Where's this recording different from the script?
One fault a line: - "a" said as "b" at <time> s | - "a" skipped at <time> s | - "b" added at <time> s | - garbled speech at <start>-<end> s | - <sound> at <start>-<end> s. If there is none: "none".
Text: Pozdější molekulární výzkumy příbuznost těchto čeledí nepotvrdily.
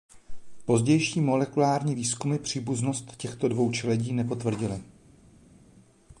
- "dvou" added at 3.5 s